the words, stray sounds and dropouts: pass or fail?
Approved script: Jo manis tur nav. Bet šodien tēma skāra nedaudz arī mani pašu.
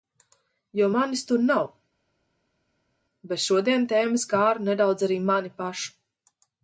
pass